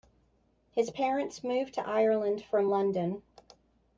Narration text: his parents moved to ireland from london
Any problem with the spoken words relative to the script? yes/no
no